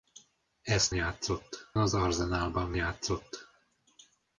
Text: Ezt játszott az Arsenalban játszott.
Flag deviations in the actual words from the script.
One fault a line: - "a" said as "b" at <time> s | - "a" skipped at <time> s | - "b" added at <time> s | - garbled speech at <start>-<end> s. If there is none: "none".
none